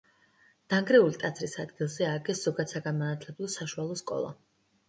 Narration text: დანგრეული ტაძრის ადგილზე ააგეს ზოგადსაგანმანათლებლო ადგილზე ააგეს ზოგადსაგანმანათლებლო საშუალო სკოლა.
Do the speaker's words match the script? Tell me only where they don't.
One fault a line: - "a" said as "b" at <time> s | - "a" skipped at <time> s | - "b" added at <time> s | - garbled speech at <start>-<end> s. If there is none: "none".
- "ადგილზე ააგეს ზოგადსაგანმანათლებლო" skipped at 3.5 s